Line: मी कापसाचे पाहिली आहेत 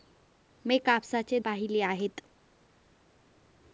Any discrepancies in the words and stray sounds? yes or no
no